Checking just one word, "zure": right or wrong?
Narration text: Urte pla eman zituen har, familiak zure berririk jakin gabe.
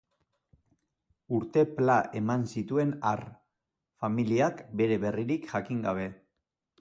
wrong